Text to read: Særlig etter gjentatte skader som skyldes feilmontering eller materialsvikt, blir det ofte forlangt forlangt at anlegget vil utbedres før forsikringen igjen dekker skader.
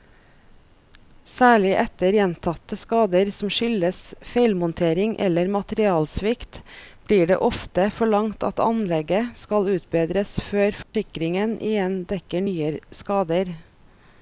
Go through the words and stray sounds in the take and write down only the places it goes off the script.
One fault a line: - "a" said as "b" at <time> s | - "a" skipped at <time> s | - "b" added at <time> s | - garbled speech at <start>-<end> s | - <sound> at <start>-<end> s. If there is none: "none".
- "forlangt" skipped at 8.4 s
- "vil" said as "skal" at 9.4 s
- dropout at 10.8-10.9 s
- "nye" added at 12.5 s